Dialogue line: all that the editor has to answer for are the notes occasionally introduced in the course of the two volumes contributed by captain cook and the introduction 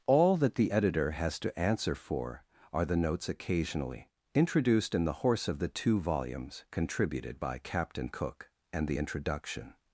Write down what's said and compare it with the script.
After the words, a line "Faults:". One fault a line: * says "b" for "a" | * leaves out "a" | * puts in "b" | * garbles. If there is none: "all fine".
all that the editor has to answer for are the notes occasionally introduced in the horse of the two volumes contributed by captain cook and the introduction
Faults:
* says "horse" for "course"